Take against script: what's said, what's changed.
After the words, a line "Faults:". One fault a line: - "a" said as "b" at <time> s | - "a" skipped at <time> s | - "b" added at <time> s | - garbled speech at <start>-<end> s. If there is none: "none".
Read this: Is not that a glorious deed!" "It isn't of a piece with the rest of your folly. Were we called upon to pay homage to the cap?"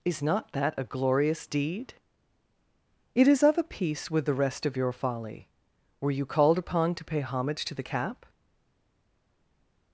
Is not that a glorious deed!" "It is of a piece with the rest of your folly. Were you called upon to pay homage to the cap?"
Faults:
- "isn't" said as "is" at 3.3 s
- "we" said as "you" at 6.1 s